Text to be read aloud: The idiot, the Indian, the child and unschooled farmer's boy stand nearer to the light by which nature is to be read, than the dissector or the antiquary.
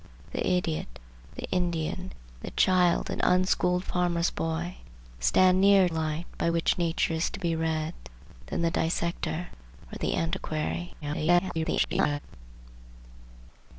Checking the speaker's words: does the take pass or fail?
fail